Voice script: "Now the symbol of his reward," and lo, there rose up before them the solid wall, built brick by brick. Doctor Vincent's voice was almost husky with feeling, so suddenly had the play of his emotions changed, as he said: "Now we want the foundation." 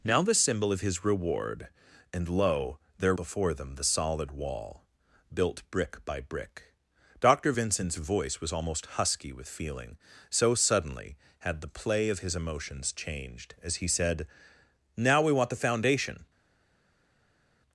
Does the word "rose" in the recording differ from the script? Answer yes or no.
yes